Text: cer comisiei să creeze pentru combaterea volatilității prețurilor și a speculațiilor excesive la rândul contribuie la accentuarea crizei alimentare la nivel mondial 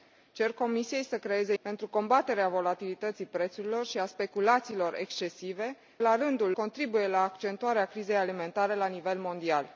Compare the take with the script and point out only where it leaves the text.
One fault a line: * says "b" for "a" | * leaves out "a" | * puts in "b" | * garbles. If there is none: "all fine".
all fine